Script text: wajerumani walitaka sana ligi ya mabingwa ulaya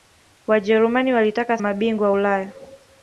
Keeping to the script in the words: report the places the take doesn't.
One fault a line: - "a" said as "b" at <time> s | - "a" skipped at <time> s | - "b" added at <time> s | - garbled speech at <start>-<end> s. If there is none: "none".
- "sana ligi ya" skipped at 1.6 s